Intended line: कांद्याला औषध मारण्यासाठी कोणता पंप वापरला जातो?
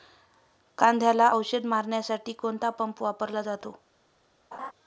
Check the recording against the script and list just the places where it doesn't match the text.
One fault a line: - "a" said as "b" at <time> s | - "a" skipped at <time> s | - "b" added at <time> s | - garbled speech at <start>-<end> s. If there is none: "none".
none